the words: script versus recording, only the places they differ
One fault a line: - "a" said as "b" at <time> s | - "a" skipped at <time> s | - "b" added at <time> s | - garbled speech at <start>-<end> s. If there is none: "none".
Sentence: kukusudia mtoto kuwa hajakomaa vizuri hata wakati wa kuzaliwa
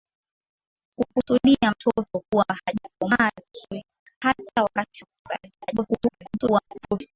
- garbled speech at 5.6-7.0 s